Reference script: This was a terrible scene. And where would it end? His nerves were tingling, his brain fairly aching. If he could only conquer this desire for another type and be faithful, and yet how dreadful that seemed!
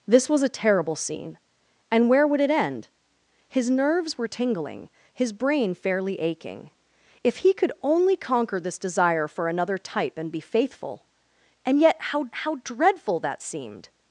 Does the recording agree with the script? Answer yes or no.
no